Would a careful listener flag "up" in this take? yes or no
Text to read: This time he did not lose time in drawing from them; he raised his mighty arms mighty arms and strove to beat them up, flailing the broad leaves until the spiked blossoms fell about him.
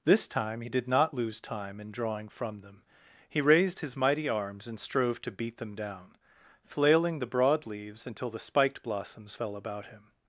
yes